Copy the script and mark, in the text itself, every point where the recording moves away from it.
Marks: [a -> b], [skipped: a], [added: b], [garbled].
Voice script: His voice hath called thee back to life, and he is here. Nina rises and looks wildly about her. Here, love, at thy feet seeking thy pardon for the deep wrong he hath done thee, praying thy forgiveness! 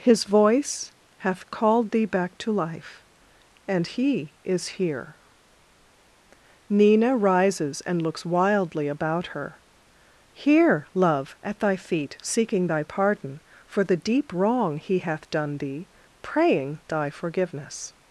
His voice hath called thee back to life, and he is here. Nina rises and looks wildly about her. Here, love, at thy feet seeking thy pardon for the deep wrong he hath done thee, praying thy forgiveness!